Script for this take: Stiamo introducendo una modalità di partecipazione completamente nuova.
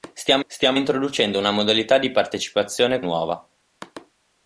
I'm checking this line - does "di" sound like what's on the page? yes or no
yes